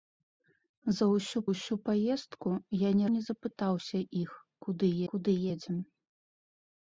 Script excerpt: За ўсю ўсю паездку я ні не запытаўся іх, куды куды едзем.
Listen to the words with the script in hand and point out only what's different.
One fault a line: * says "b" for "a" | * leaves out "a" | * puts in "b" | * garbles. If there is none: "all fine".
all fine